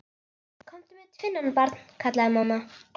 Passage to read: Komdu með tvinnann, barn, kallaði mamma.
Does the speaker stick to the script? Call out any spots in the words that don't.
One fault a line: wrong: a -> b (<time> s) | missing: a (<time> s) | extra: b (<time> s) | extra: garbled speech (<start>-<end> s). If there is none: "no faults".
no faults